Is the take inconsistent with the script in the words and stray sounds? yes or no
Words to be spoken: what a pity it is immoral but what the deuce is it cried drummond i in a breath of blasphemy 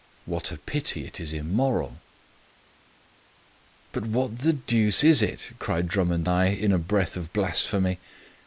no